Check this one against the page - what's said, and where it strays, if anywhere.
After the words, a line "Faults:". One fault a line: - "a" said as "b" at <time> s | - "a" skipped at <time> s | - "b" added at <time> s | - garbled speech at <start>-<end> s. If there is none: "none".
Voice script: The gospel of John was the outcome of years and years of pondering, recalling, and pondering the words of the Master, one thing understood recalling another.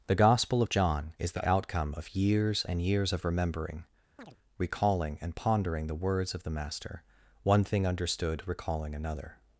The gospel of John is the outcome of years and years of remembering, recalling, and pondering the words of the Master, one thing understood recalling another.
Faults:
- "was" said as "is" at 1.2 s
- "pondering" said as "remembering" at 3.2 s